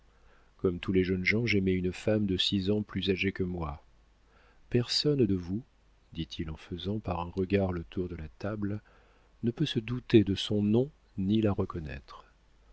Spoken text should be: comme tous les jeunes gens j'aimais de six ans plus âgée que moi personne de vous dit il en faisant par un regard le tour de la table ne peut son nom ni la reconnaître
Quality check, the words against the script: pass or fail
fail